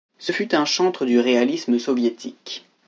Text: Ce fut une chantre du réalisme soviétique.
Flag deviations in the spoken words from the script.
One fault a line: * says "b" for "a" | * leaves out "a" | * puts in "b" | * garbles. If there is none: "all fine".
* says "un" for "une"